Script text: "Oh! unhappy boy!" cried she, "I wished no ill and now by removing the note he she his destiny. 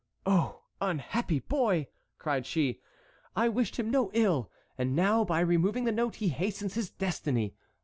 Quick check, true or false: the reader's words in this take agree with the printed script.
false